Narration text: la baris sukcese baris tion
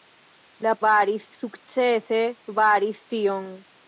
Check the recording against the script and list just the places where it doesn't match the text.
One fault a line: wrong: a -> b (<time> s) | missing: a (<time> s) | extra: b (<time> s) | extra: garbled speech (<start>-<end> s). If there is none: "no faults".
no faults